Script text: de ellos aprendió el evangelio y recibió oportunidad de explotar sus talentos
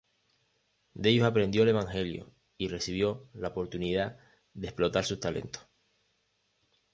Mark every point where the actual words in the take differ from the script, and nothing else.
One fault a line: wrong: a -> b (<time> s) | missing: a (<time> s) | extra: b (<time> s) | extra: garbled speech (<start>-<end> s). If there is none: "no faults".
extra: la (3.4 s)